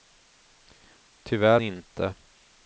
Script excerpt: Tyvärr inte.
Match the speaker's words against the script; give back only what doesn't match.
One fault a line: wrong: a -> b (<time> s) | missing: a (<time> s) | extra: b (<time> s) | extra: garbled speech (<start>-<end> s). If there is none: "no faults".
no faults